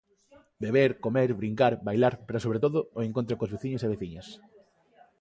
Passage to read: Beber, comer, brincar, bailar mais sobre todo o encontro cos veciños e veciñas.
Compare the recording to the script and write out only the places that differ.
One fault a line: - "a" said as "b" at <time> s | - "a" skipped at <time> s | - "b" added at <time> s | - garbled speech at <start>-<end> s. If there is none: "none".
- "mais" said as "pero" at 2.3 s